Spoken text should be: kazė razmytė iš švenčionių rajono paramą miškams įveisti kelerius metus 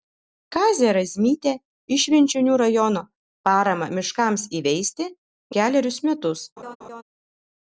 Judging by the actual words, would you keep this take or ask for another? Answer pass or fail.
pass